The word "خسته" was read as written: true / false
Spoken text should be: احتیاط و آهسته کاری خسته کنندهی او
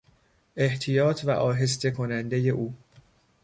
false